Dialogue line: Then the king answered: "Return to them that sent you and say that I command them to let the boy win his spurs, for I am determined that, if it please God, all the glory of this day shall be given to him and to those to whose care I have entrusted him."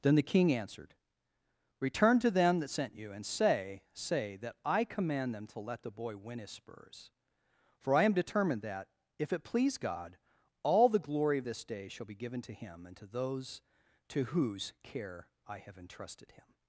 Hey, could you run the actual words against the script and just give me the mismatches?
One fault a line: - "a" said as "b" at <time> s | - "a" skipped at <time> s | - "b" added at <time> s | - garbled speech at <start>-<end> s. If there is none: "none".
- "say" added at 3.9 s